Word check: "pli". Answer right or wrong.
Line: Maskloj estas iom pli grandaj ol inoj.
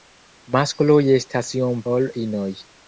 wrong